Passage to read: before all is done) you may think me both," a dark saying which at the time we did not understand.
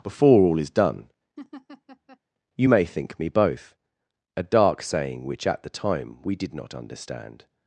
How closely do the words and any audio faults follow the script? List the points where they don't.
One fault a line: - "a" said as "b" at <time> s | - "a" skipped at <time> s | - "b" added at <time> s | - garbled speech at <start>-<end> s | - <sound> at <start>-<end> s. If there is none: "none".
- laugh at 1.4-2.2 s